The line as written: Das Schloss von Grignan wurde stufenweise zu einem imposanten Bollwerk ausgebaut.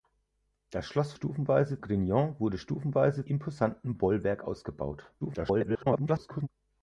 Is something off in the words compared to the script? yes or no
yes